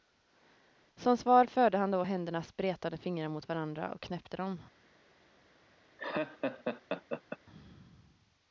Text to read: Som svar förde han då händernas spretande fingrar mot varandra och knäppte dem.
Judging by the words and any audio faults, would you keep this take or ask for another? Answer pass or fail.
fail